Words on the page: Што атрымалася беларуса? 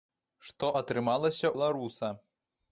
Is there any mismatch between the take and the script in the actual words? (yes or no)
no